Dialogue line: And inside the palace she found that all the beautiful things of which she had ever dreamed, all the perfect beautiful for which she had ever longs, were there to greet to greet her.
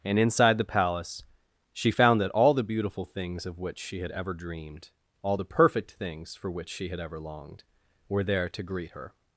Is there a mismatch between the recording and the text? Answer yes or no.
yes